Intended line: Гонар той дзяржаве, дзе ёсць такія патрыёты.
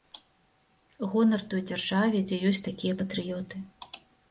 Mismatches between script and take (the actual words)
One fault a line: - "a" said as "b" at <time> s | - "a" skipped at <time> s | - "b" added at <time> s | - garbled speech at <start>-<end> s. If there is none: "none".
none